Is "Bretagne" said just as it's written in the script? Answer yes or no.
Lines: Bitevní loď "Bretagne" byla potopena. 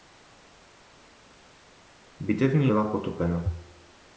no